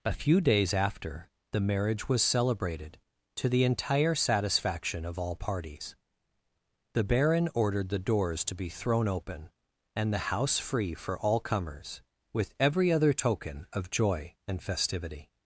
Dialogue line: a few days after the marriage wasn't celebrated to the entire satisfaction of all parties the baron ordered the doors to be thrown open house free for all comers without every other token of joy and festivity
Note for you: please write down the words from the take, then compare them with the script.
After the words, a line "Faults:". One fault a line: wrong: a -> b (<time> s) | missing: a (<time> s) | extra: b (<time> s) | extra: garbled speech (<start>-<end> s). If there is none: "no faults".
a few days after the marriage was celebrated to the entire satisfaction of all parties the baron ordered the doors to be thrown open and the house free for all comers with every other token of joy and festivity
Faults:
wrong: wasn't -> was (2.1 s)
extra: and the (9.9 s)
wrong: without -> with (12.3 s)